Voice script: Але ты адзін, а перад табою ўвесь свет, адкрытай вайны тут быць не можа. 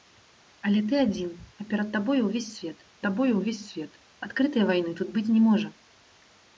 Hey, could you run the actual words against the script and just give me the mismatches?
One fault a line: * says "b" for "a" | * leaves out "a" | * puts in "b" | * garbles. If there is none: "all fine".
* puts in "табою ўвесь свет"